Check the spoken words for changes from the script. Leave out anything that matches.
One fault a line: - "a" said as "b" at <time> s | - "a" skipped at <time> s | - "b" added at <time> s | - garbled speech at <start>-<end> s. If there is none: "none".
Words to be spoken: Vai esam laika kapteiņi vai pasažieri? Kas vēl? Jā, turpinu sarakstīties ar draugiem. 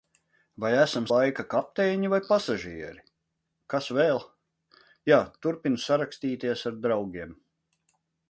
none